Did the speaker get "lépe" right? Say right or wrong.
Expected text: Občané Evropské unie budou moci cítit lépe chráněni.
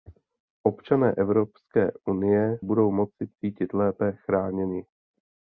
right